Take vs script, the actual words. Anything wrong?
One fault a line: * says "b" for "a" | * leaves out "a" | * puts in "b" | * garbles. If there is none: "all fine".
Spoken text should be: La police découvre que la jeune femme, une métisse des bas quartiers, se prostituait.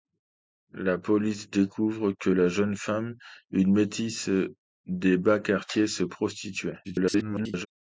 * garbles